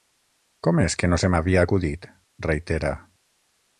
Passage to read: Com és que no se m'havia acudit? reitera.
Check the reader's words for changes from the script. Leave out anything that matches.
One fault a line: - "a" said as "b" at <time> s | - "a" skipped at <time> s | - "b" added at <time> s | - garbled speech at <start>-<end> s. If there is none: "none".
none